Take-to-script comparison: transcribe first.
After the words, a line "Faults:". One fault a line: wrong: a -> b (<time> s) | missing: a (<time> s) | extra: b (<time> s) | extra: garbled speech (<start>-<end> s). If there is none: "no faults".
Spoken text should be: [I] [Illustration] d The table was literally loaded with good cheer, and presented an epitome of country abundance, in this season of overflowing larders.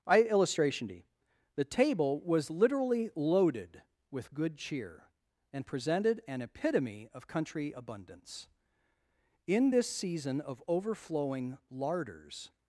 [I] [Illustration] d The table was literally loaded with good cheer, and presented an epitome of country abundance, in this season of overflowing larders.
Faults:
no faults